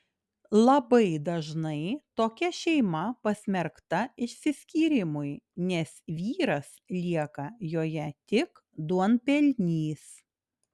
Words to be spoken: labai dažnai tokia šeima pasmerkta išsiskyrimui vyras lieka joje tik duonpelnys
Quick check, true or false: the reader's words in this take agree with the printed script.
false